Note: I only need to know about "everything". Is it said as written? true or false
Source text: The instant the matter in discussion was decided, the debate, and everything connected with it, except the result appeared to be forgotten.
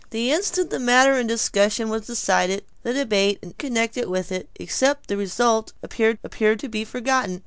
false